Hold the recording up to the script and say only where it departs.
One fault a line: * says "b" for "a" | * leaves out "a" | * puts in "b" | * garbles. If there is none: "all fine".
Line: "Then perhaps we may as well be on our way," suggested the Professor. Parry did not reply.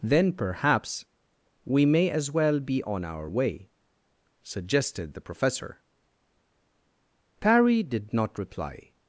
all fine